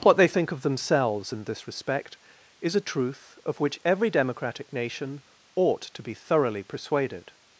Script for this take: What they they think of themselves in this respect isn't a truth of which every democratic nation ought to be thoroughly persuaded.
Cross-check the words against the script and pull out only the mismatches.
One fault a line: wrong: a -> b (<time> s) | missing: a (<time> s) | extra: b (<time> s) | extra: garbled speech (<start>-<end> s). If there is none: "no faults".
missing: they (0.3 s)
wrong: isn't -> is (2.6 s)